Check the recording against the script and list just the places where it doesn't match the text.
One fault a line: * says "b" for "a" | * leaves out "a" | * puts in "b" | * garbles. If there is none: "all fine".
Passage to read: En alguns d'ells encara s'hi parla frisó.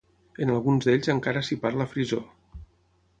all fine